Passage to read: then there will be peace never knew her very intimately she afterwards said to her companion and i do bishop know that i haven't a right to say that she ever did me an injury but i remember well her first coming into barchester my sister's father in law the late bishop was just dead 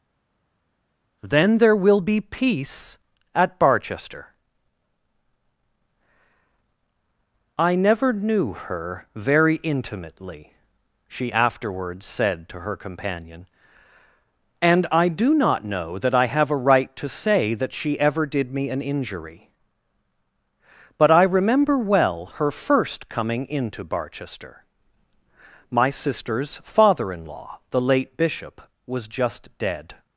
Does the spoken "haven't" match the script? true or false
false